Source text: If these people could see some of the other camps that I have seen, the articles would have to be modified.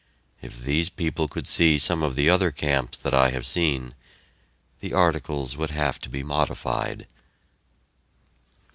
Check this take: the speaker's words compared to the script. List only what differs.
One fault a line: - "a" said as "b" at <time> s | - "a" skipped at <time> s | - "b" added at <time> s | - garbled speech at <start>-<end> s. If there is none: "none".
none